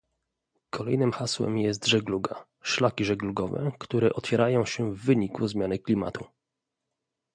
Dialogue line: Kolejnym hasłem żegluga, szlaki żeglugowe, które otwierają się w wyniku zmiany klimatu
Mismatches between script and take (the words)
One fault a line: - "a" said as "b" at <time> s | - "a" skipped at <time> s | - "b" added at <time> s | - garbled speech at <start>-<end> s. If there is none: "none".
- "jest" added at 1.6 s